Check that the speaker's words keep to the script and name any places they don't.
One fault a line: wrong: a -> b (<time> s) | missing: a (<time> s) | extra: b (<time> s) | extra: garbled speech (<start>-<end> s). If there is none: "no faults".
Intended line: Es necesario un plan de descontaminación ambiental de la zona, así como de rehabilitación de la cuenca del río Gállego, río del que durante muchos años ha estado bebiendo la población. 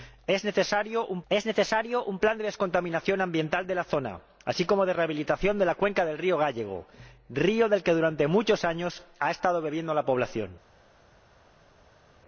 extra: es necesario un (1.3 s)